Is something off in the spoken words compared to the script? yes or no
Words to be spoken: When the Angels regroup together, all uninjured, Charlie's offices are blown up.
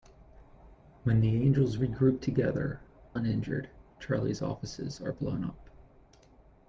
yes